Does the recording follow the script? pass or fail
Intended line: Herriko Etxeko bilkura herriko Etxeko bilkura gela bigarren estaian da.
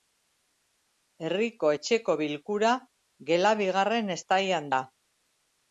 fail